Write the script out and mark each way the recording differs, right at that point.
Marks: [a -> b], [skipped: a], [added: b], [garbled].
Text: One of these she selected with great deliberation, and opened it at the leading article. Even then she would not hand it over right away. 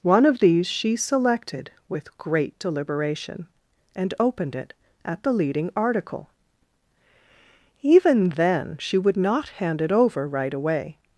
One of these she selected with great deliberation, and opened it at the leading article. Even then she would not hand it over right away.